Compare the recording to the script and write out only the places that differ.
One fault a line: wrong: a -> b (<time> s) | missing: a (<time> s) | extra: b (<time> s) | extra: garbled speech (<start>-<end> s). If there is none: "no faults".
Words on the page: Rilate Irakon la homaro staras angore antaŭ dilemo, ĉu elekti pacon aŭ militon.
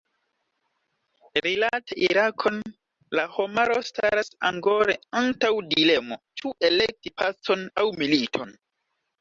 no faults